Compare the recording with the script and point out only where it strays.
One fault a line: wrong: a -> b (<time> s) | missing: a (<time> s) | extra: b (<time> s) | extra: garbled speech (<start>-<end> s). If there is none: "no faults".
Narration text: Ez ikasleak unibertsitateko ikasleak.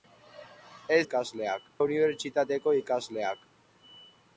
no faults